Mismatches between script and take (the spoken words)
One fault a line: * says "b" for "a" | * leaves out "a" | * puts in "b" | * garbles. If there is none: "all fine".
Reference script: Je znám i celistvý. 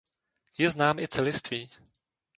all fine